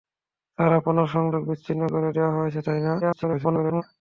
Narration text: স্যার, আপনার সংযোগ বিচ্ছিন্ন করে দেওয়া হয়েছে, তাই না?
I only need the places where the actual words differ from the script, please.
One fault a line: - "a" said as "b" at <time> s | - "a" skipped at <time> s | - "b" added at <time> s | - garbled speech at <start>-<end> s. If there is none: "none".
- garbled speech at 3.0-3.8 s